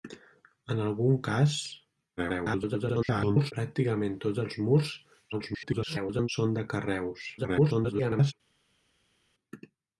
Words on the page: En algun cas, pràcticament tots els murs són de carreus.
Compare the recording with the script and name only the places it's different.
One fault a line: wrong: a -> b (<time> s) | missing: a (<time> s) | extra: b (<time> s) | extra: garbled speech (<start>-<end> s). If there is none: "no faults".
extra: garbled speech (2.2-3.5 s)
extra: garbled speech (5.3-6.3 s)
extra: garbled speech (7.4-8.3 s)